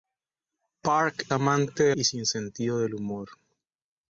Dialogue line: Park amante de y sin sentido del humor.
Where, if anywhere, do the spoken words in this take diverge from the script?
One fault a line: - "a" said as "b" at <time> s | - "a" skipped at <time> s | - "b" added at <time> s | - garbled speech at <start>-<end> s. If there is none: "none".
none